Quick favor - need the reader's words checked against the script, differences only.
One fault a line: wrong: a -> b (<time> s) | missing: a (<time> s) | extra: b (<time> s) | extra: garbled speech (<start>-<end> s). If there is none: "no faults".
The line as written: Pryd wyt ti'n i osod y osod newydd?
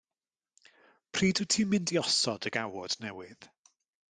extra: mynd (1.7 s)
wrong: osod -> gawod (2.6 s)